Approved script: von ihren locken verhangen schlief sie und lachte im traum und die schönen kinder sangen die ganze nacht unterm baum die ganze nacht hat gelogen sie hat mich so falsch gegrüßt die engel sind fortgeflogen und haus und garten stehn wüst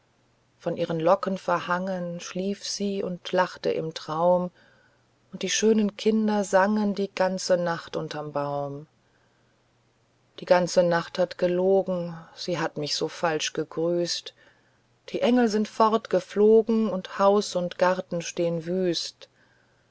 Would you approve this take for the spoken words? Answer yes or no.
yes